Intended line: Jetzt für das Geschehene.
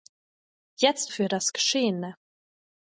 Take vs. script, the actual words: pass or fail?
pass